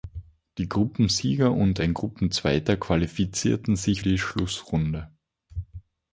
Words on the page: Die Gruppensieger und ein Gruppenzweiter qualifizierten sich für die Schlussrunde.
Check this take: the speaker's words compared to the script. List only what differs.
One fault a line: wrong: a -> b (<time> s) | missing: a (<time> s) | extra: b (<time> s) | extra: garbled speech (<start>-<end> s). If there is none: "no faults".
missing: für (4.0 s)